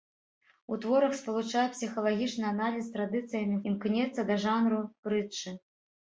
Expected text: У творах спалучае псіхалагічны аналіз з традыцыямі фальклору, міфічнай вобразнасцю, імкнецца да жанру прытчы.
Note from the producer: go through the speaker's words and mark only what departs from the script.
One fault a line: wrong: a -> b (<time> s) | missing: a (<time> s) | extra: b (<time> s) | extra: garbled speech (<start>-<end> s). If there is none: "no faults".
missing: фальклору міфічнай вобразнасцю (3.6 s)